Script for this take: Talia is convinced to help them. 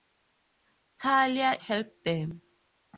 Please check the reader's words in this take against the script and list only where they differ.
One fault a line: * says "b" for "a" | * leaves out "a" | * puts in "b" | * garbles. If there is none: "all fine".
* leaves out "is convinced to"